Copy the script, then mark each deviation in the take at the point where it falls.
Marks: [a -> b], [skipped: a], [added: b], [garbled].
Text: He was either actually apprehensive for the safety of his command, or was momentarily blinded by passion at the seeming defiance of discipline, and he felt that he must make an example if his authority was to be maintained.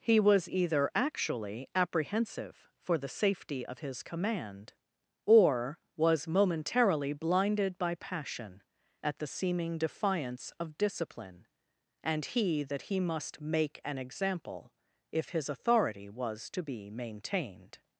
He was either actually apprehensive for the safety of his command, or was momentarily blinded by passion at the seeming defiance of discipline, and he [skipped: felt] that he must make an example if his authority was to be maintained.